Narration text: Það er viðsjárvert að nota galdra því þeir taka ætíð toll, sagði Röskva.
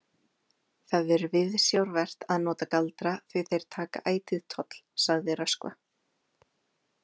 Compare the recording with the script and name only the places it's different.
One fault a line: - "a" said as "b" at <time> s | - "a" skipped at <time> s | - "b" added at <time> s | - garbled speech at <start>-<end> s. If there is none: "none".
none